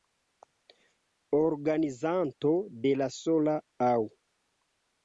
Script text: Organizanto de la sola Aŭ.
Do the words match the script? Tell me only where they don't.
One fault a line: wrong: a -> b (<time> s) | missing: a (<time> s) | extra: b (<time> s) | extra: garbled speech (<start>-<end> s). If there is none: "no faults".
no faults